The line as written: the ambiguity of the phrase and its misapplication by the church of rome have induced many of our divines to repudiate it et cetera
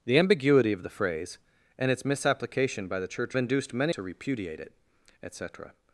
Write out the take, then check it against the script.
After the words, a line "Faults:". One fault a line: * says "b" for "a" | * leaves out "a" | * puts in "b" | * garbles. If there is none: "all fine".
the ambiguity of the phrase and its misapplication by the church induced many to repudiate it et cetera
Faults:
* leaves out "of rome have"
* leaves out "of our divines"